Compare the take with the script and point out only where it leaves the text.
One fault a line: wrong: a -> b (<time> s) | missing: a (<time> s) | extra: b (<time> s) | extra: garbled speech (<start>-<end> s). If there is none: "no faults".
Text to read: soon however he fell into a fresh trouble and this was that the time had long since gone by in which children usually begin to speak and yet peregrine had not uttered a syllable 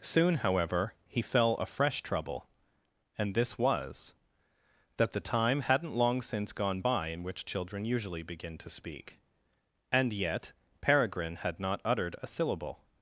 missing: into (1.5 s)
wrong: had -> hadn't (5.6 s)